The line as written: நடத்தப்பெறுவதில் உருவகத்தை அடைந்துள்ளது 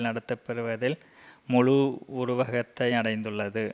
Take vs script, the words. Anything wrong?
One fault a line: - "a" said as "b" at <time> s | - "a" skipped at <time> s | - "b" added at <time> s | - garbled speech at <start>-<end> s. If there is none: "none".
- "முழு" added at 1.5 s